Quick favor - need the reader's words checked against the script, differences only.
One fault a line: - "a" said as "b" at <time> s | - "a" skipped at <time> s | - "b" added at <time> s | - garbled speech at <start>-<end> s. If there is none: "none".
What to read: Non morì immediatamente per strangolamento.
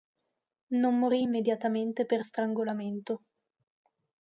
none